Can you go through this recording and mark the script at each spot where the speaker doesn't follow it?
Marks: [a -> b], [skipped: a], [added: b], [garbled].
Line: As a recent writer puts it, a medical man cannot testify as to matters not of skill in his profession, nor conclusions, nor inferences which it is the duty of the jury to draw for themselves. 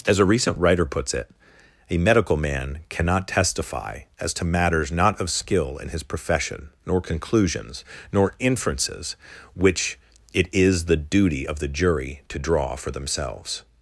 As a recent writer puts it, a medical man cannot testify as to matters not of skill in his profession, nor conclusions, nor inferences which it is the duty of the jury to draw for themselves.